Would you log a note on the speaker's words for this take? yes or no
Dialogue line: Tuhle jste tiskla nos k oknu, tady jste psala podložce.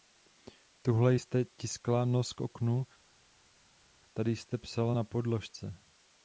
yes